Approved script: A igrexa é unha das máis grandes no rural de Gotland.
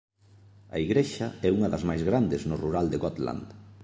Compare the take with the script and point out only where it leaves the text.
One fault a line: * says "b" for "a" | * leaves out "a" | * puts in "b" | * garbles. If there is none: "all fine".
all fine